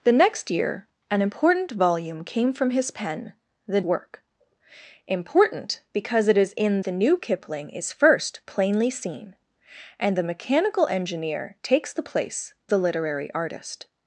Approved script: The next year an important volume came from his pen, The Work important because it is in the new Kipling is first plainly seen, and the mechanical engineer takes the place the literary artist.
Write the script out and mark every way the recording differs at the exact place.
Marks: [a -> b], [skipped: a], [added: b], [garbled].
The next year an important volume came from his pen, The Work important because it is in the new Kipling is first plainly seen, and the mechanical engineer takes the place the literary artist.